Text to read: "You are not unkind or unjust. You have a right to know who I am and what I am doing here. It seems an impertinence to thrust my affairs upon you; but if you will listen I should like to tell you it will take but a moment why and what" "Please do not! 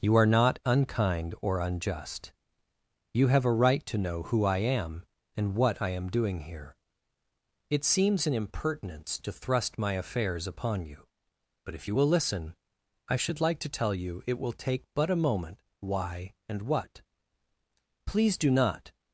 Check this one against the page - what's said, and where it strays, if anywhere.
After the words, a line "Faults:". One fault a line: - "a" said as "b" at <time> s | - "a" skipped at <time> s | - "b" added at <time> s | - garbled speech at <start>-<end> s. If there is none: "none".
"You are not unkind or unjust. You have a right to know who I am and what I am doing here. It seems an impertinence to thrust my affairs upon you; but if you will listen I should like to tell you it will take but a moment why and what" "Please do not!
Faults:
none